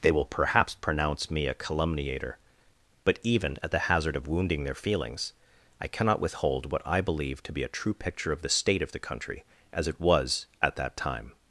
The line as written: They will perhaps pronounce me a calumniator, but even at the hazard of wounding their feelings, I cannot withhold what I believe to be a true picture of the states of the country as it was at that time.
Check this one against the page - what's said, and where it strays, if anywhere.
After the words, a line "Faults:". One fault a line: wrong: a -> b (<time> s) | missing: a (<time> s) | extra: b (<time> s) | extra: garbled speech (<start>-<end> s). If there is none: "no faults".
They will perhaps pronounce me a calumniator, but even at the hazard of wounding their feelings, I cannot withhold what I believe to be a true picture of the state of the country as it was at that time.
Faults:
wrong: states -> state (8.5 s)